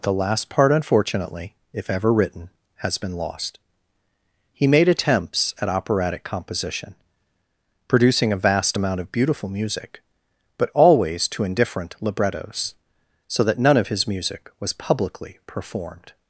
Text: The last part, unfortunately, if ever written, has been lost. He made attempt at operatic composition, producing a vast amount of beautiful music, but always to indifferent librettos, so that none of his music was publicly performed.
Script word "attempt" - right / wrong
wrong